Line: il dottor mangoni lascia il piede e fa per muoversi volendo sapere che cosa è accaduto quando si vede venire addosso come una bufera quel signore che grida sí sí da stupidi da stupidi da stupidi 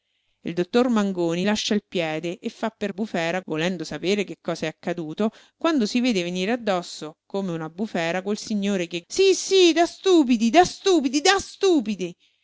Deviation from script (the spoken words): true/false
true